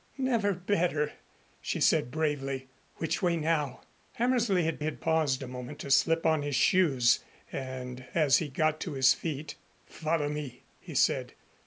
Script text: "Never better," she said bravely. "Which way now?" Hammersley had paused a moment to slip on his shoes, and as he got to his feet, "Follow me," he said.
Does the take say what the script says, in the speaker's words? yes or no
no